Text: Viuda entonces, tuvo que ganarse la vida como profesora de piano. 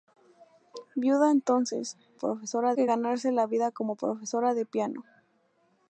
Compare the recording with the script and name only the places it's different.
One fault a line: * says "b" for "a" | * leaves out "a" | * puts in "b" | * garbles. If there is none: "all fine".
* says "profesora" for "tuvo"